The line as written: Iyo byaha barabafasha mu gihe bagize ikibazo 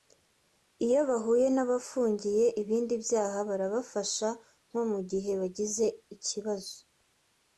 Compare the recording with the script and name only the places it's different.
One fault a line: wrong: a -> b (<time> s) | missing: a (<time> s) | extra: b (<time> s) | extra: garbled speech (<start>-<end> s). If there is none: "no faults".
extra: bahuye n'abafungiye ibindi (1.1 s)
extra: nko (4.7 s)